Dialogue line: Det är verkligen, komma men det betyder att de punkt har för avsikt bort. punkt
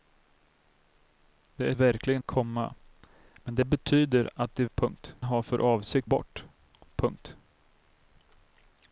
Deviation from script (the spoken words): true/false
false